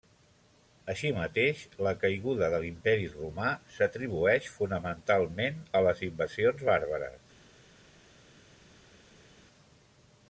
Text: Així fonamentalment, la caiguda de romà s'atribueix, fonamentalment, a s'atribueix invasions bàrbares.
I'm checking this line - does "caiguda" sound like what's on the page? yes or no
yes